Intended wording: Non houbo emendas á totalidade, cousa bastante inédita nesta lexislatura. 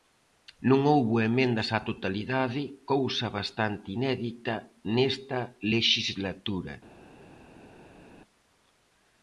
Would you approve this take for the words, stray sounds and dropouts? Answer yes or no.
yes